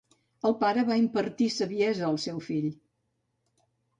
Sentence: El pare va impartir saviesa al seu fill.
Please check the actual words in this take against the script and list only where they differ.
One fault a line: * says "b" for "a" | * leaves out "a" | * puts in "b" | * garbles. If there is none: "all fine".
all fine